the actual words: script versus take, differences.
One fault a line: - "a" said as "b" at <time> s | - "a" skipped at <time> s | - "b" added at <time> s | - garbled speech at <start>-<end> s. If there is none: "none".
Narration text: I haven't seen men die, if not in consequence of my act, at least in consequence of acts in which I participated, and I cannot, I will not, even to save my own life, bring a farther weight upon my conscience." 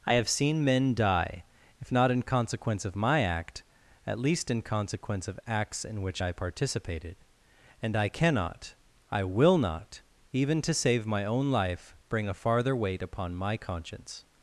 - "haven't" said as "have" at 0.1 s